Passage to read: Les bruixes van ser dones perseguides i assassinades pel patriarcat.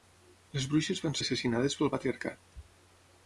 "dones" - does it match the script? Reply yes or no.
no